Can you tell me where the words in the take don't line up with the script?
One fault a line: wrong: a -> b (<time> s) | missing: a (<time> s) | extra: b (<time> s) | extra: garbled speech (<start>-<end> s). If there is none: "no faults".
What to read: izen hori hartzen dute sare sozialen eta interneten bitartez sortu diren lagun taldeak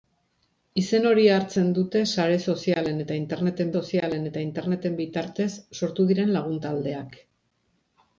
extra: sozialen eta interneten (3.8 s)